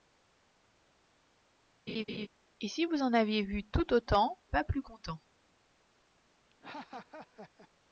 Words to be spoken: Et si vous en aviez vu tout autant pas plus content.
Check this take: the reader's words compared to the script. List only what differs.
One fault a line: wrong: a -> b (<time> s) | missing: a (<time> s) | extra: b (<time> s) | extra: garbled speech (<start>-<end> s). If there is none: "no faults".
no faults